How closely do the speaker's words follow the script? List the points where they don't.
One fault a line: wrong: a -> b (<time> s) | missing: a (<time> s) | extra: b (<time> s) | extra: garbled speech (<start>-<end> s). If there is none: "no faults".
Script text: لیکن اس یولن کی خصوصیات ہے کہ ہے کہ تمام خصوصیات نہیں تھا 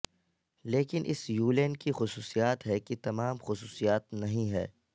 missing: ہے کہ (3.0 s)
wrong: تھا -> ہے (4.5 s)